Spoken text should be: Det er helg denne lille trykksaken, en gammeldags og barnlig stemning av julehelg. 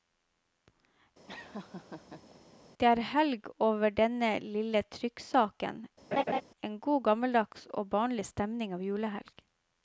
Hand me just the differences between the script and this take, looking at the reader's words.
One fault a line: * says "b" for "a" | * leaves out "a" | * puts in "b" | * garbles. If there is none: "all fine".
* puts in "over"
* puts in "god"